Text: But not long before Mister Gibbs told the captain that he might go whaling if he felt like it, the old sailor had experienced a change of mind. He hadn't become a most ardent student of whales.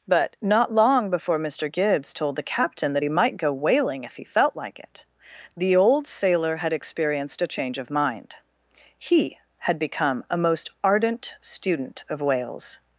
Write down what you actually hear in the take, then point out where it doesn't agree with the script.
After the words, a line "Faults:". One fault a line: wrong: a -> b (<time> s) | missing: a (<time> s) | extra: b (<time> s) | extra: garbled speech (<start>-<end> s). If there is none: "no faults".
But not long before Mister Gibbs told the captain that he might go whaling if he felt like it, the old sailor had experienced a change of mind. He had become a most ardent student of whales.
Faults:
wrong: hadn't -> had (9.6 s)